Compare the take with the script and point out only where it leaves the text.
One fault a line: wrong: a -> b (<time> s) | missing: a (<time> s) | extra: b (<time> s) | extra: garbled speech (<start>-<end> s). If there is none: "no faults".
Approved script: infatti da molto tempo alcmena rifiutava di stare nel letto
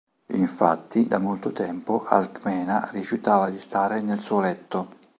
extra: suo (4.2 s)